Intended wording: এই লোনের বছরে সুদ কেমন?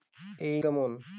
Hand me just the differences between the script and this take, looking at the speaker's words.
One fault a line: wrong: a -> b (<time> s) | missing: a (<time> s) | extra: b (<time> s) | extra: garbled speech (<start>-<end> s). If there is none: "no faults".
missing: লোনের বছরে সুদ (0.6 s)